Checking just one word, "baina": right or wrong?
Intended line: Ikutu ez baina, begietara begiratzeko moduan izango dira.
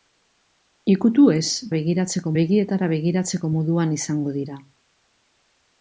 wrong